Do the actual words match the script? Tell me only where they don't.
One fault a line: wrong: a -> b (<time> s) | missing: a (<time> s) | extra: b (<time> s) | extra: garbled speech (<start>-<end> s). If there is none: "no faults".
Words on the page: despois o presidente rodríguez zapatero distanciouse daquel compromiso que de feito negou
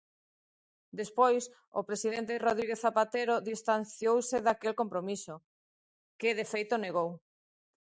no faults